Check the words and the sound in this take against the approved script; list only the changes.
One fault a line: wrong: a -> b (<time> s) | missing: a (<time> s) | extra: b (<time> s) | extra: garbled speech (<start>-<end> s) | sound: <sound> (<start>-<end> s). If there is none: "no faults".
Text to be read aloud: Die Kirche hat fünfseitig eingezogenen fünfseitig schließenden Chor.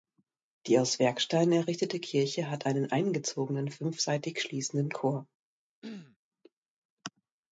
extra: aus Werksteinen errichtete (0.8 s)
wrong: fünfseitig -> einen (2.6 s)
sound: throat clearing (5.8-6.2 s)